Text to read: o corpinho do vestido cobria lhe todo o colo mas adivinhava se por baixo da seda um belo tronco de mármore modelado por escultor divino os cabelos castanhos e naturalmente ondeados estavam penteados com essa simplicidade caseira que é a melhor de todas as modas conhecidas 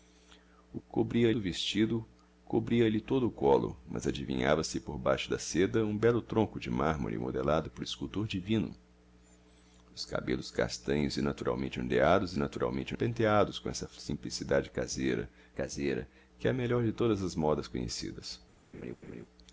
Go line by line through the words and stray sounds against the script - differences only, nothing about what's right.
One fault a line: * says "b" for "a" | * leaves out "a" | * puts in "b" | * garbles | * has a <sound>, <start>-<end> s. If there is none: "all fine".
* says "cobria" for "corpinho"
* says "naturalmente" for "estavam"
* puts in "caseira"
* has a laugh, 18.7-19.3 s